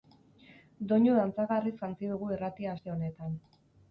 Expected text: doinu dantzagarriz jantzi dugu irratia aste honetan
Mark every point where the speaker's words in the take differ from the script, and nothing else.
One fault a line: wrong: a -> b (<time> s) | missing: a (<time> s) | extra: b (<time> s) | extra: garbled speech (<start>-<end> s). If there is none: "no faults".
no faults